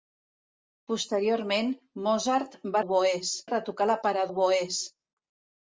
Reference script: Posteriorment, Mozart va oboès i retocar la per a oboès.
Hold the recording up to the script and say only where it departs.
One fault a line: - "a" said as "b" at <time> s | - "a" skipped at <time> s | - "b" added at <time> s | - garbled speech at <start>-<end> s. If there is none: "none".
none